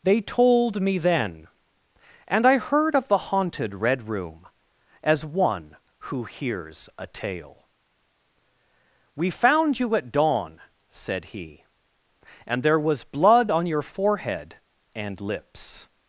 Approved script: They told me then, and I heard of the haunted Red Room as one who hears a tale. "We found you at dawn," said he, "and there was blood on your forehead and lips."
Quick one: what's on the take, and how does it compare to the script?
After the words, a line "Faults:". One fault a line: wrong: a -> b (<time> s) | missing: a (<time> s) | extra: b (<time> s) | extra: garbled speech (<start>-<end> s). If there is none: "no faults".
They told me then, and I heard of the haunted Red Room as one who hears a tale. "We found you at dawn," said he, "and there was blood on your forehead and lips."
Faults:
no faults